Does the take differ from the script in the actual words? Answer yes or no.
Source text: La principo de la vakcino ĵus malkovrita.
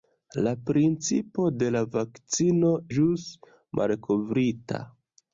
no